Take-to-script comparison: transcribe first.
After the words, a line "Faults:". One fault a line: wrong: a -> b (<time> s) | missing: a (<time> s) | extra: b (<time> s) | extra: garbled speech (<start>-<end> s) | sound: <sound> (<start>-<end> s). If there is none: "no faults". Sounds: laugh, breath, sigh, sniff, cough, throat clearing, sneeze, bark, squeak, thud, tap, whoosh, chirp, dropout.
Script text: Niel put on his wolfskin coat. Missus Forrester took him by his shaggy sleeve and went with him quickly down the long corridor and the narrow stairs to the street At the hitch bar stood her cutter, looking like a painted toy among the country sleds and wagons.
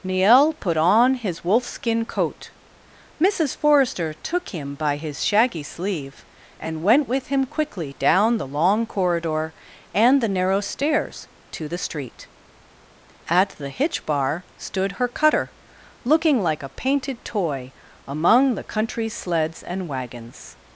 Niel put on his wolfskin coat. Missus Forrester took him by his shaggy sleeve and went with him quickly down the long corridor and the narrow stairs to the street At the hitch bar stood her cutter, looking like a painted toy among the country sleds and wagons.
Faults:
no faults